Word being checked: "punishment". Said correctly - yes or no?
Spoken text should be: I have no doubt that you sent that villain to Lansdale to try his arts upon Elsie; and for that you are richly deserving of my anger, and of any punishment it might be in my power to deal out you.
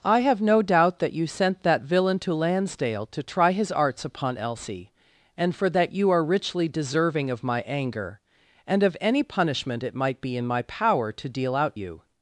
yes